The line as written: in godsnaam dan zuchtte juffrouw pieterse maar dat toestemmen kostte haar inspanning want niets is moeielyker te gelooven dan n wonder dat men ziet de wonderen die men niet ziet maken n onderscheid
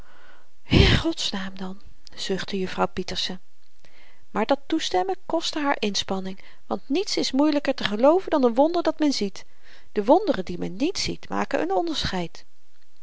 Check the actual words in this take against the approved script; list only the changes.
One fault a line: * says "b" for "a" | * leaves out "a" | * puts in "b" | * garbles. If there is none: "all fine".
all fine